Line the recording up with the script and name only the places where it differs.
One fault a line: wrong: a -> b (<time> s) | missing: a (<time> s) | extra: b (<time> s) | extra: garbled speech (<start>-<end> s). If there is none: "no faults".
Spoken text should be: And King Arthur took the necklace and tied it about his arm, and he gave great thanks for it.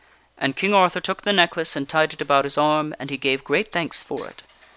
no faults